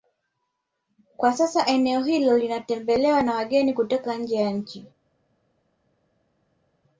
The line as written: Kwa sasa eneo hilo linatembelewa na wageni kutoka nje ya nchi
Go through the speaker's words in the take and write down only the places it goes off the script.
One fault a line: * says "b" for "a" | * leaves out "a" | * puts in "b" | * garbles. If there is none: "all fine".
all fine